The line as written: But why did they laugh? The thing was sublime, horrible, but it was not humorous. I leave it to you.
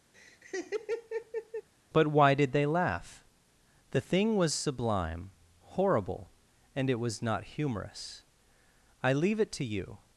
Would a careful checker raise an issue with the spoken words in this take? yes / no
yes